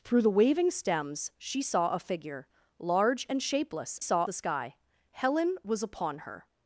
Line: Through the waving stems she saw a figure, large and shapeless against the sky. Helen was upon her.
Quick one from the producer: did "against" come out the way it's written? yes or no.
no